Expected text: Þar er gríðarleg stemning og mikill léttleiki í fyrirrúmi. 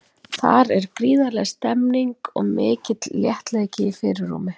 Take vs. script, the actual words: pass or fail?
pass